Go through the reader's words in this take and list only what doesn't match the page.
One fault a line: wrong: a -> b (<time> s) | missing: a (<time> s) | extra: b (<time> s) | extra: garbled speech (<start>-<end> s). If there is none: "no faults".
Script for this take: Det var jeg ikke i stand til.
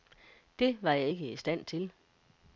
no faults